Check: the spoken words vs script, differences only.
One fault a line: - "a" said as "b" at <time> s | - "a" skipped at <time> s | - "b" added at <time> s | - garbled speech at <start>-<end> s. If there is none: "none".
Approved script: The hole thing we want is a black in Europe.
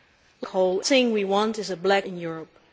none